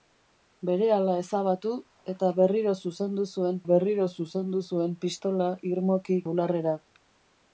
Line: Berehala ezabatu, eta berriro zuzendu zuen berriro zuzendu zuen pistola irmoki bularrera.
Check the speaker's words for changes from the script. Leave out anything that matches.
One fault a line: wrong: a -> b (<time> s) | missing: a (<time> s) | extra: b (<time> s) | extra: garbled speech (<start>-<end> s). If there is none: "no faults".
no faults